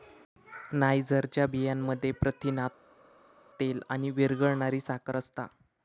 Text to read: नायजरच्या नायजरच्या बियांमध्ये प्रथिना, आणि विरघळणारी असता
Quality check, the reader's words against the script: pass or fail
fail